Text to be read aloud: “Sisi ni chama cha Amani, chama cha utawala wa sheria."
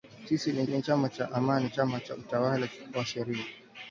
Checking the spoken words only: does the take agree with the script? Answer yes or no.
no